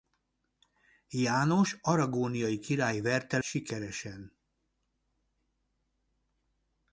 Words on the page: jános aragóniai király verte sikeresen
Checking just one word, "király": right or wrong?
right